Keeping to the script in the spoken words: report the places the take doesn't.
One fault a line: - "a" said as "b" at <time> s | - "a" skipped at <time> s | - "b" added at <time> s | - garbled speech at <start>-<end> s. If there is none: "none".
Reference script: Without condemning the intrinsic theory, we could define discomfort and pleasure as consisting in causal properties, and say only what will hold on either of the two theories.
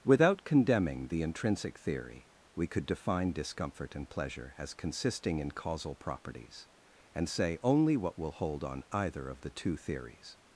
none